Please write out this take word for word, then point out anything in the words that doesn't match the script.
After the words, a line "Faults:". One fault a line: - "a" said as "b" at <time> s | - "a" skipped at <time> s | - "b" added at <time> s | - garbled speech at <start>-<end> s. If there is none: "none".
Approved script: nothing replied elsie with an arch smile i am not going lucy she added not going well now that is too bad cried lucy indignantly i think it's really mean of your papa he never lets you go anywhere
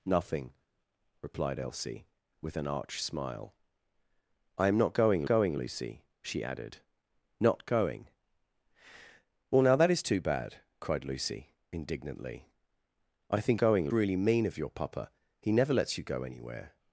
nothing replied elsie with an arch smile i am not going going lucy she added not going well now that is too bad cried lucy indignantly i think going really mean of your papa he never lets you go anywhere
Faults:
- "going" added at 5.2 s
- "it's" said as "going" at 13.6 s